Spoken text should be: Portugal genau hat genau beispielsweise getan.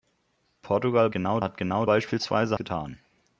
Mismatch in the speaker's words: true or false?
false